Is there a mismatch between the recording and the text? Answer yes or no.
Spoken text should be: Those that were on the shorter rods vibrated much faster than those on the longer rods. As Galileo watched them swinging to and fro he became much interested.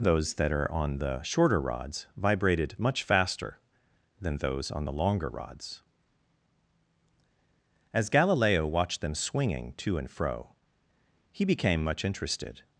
yes